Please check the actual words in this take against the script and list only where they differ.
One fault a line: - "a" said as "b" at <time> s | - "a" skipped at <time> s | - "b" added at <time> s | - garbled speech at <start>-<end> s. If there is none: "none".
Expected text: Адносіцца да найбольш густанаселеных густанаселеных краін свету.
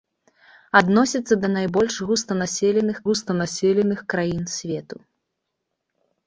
none